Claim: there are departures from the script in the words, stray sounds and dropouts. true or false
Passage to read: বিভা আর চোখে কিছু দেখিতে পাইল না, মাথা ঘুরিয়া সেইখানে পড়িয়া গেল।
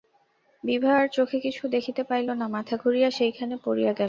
false